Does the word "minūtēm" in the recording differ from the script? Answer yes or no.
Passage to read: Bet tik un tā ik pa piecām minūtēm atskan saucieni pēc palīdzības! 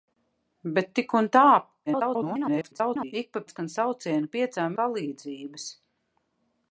yes